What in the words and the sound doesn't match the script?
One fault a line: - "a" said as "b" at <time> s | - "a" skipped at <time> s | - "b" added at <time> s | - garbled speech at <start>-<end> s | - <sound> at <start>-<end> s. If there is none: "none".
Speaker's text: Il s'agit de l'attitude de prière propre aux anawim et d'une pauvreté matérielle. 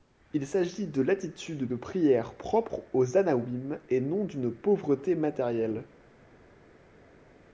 - "non" added at 4.0 s